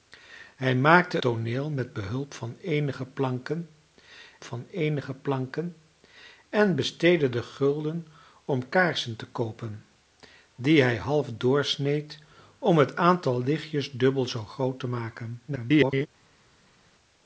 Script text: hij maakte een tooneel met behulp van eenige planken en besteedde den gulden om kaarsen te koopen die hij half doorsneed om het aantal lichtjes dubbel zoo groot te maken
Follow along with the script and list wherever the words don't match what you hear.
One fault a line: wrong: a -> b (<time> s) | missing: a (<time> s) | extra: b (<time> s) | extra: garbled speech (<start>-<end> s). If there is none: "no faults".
missing: een (1.2 s)
extra: van eenige planken (4.4 s)
extra: garbled speech (15.5-16.1 s)